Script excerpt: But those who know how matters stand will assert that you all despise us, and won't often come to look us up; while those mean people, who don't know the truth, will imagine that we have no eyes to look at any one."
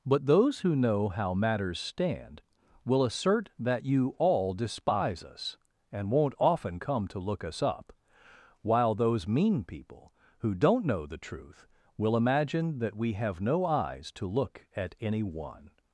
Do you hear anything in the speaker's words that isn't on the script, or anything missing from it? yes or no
no